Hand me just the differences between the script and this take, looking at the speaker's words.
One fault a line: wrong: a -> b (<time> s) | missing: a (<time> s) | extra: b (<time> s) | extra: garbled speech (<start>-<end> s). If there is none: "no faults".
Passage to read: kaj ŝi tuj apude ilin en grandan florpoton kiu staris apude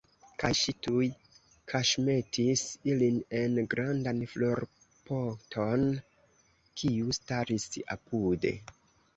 wrong: apude -> kaŝmetis (1.7 s)